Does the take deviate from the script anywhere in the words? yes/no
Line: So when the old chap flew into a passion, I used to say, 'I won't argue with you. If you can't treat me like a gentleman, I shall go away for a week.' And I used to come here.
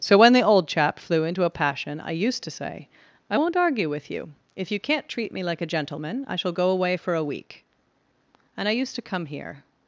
no